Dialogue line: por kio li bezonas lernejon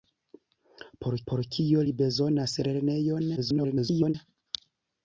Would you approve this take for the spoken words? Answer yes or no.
no